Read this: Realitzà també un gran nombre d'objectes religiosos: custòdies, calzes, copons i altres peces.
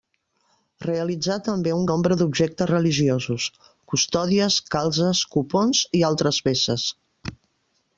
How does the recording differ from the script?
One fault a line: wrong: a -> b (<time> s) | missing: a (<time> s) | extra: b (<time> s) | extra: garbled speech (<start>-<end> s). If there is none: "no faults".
missing: gran (1.8 s)